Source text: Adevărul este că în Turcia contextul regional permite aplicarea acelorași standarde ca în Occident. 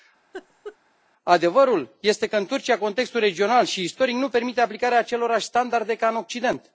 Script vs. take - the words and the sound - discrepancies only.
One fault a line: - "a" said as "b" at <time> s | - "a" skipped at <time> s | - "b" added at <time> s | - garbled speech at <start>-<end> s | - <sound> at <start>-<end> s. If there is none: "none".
- laugh at 0.3-0.8 s
- "și istoric nu" added at 3.6 s